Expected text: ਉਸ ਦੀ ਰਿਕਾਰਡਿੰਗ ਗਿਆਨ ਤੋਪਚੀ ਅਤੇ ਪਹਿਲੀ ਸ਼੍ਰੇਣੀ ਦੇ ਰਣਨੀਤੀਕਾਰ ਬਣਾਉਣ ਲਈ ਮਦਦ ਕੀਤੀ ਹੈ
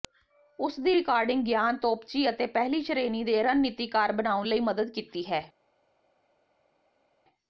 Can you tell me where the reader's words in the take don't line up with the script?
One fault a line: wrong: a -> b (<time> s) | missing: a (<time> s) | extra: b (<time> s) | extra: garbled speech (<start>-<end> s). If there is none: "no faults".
no faults